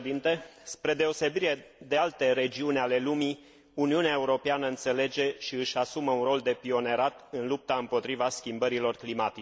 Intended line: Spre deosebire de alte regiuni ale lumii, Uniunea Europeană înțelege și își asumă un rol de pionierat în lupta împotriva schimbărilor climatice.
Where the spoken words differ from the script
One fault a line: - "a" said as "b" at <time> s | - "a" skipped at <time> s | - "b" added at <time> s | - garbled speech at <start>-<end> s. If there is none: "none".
none